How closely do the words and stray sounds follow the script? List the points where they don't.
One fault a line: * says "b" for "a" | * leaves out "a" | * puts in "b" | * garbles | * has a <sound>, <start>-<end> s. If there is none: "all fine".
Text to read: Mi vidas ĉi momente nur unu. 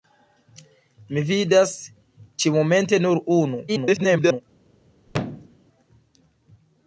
* garbles
* has a thud, 5.1-5.6 s